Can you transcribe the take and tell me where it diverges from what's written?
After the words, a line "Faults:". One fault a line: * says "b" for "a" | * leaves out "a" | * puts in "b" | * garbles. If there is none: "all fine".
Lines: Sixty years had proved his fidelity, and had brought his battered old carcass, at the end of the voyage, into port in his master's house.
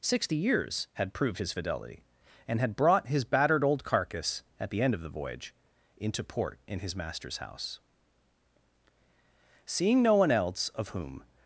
Sixty years had proved his fidelity, and had brought his battered old carcass, at the end of the voyage, into port in his master's house. Seeing no one else of whom
Faults:
* puts in "Seeing no one else of whom"